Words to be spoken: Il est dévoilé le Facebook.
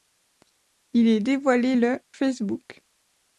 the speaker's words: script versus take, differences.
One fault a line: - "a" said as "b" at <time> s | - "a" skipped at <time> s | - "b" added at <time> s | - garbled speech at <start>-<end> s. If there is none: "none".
none